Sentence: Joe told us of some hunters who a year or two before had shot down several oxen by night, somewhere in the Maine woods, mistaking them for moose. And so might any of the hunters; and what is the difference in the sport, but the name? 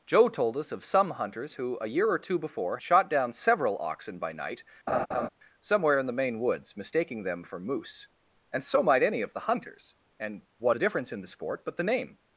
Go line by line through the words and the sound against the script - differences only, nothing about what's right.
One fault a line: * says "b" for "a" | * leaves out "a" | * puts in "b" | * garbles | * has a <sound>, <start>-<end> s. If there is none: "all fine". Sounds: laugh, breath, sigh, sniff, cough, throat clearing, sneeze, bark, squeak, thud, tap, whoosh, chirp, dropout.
* leaves out "had"
* has a laugh, 4.9-5.3 s
* leaves out "is"